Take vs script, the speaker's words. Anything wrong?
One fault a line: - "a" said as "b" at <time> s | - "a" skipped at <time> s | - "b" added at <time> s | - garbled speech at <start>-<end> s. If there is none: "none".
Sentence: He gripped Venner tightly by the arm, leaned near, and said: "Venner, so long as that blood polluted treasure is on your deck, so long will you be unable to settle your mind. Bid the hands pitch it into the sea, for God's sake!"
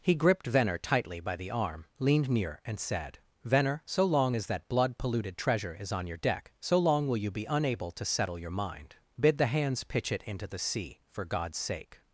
none